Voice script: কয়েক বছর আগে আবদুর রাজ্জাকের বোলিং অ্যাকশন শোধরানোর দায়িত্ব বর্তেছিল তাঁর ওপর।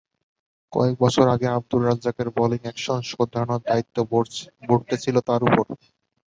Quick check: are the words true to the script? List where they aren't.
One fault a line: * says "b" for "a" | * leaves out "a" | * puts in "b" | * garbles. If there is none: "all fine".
all fine